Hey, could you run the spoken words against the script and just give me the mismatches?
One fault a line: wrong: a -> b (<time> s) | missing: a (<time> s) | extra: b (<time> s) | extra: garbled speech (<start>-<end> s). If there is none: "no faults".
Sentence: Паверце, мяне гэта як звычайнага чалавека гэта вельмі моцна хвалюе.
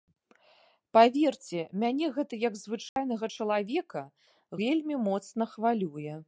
missing: гэта (4.0 s)